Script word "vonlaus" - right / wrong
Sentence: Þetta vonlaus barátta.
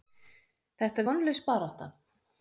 right